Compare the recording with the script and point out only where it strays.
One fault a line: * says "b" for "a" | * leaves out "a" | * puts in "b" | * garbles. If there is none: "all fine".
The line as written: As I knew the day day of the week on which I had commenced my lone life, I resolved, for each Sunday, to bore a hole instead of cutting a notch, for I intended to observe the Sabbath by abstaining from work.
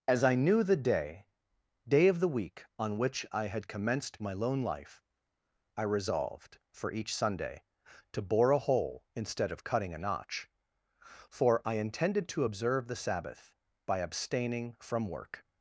all fine